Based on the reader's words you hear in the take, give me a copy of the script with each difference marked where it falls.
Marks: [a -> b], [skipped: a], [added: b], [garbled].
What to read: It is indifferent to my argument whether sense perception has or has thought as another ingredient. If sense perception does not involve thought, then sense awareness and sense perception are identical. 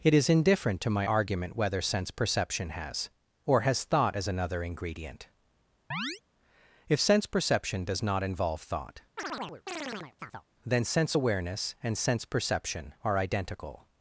It is indifferent to my argument whether sense perception has or has thought as another ingredient. If sense perception does not involve thought, then sense awareness and sense perception are identical.